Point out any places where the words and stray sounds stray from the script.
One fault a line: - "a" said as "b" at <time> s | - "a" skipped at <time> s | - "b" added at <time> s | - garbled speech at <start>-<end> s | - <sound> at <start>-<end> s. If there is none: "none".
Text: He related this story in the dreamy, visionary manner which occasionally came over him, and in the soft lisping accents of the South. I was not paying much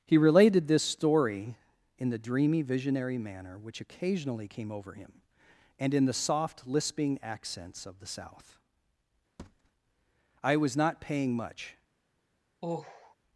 - thud at 9.4-9.7 s
- sigh at 12.6-13.1 s